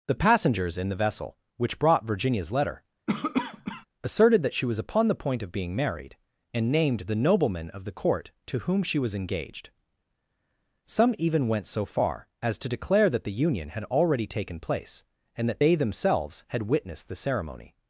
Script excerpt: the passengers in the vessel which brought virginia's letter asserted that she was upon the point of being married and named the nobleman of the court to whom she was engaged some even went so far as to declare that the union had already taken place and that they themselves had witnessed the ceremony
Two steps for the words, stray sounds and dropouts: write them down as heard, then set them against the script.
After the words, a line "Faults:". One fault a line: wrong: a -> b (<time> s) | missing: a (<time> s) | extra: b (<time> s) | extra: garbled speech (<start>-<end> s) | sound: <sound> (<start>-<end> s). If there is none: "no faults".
the passengers in the vessel which brought virginia's letter asserted that she was upon the point of being married and named the nobleman of the court to whom she was engaged some even went so far as to declare that the union had already taken place and that they themselves had witnessed the ceremony
Faults:
sound: cough (3.1-3.9 s)